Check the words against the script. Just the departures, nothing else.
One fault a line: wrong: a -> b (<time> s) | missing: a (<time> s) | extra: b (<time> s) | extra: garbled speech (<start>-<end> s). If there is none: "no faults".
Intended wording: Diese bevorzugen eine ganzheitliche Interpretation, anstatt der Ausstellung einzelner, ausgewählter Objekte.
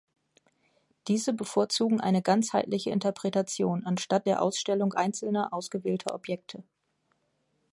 no faults